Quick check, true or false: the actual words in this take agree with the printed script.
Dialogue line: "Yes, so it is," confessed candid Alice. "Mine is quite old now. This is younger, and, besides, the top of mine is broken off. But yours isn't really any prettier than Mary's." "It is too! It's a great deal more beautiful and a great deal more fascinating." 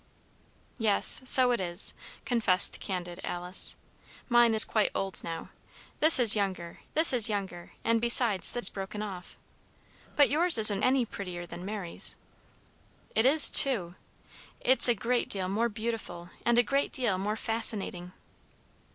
false